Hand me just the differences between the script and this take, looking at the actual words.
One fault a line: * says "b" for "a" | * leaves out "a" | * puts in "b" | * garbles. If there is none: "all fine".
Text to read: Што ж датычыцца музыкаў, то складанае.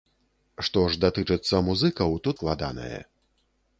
all fine